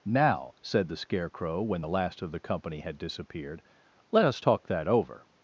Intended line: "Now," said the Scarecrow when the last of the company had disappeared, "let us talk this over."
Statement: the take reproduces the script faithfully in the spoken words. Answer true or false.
false